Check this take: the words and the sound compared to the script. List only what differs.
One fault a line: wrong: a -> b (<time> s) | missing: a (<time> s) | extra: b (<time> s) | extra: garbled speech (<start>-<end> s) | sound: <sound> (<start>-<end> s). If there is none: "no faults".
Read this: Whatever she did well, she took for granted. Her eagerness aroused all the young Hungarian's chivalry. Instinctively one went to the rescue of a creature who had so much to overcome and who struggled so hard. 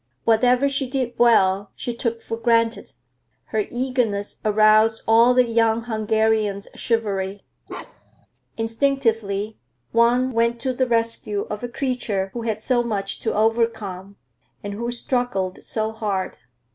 sound: bark (7.7-8.3 s)